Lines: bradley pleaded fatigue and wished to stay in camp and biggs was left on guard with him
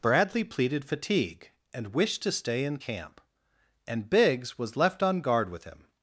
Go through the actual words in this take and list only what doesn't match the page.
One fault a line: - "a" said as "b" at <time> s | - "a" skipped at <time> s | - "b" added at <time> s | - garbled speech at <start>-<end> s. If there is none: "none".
none